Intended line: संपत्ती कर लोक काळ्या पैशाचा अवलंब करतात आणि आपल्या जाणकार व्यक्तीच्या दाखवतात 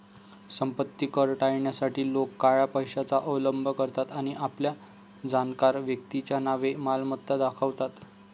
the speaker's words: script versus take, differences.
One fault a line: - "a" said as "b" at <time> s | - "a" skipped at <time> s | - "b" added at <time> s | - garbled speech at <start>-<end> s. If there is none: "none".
- "टाळण्यासाठी" added at 1.4 s
- "नावे मालमत्ता" added at 6.4 s